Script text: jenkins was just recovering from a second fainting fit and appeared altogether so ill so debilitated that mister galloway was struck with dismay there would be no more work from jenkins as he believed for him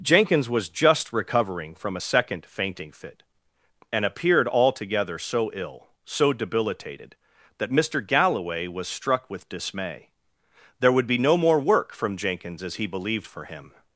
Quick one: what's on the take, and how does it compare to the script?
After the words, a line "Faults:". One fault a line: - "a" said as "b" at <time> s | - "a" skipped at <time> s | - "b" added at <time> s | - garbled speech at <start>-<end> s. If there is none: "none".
jenkins was just recovering from a second fainting fit and appeared altogether so ill so debilitated that mister galloway was struck with dismay there would be no more work from jenkins as he believed for him
Faults:
none